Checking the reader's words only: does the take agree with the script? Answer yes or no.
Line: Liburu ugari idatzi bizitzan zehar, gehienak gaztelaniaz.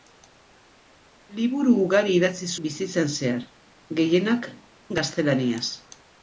yes